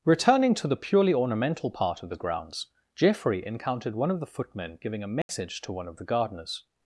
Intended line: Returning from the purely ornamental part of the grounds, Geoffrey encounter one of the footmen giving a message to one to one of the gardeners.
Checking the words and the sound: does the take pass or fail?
fail